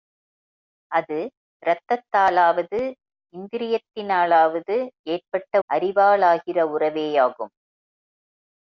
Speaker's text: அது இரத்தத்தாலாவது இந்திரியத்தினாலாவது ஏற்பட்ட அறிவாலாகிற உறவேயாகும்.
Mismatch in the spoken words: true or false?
false